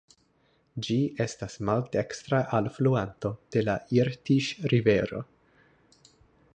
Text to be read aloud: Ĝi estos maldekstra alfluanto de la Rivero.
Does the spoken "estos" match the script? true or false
false